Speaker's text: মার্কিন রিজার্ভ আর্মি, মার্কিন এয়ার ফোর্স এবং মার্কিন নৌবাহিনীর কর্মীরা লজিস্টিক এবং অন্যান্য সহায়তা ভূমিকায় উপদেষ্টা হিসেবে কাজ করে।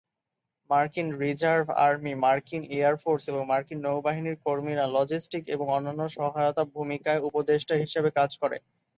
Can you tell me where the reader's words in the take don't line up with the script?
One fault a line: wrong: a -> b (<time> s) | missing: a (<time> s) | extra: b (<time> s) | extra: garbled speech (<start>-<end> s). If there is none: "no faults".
no faults